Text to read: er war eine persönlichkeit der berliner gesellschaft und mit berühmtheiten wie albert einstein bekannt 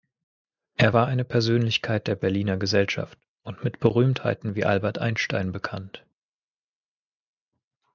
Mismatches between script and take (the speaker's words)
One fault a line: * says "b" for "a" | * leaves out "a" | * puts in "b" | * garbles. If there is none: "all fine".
all fine